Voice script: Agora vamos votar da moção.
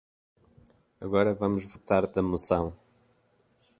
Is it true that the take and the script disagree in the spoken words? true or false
false